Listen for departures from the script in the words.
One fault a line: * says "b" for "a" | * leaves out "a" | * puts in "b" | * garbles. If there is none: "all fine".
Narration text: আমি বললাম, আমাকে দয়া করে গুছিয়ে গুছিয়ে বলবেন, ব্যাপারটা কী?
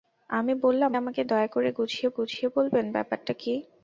all fine